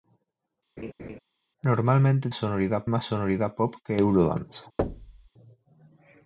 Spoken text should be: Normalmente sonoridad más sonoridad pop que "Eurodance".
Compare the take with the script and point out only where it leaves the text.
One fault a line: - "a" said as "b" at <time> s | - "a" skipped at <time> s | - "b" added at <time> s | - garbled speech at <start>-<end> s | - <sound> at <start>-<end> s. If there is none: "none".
- laugh at 0.8-1.2 s
- thud at 4.8-5.3 s